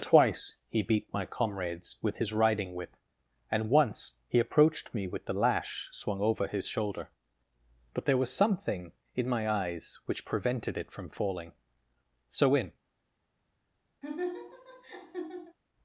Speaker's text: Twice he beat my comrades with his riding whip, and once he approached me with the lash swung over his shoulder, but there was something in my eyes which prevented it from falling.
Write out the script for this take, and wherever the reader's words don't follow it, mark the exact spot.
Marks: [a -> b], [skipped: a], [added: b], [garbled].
Twice he beat my comrades with his riding whip, and once he approached me with the lash swung over his shoulder, but there was something in my eyes which prevented it from falling. [added: So in]